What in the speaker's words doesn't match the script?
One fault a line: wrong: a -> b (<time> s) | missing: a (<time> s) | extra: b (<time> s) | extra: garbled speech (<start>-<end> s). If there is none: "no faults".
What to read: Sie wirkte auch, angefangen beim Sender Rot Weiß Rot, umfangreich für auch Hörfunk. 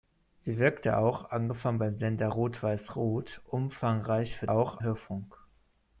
no faults